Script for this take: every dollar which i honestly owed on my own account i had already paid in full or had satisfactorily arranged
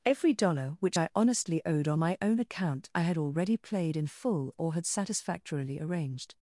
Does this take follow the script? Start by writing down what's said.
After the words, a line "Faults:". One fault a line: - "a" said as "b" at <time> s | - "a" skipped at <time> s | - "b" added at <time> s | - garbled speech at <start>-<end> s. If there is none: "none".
every dollar which i honestly owed on my own account i had already played in full or had satisfactorily arranged
Faults:
- "paid" said as "played" at 3.5 s